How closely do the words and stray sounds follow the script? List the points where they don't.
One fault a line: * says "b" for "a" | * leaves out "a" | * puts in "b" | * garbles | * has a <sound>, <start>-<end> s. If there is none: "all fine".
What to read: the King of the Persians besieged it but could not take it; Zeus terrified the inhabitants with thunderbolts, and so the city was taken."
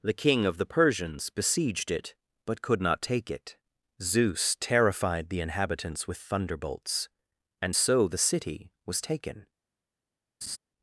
* has a laugh, 10.4-10.6 s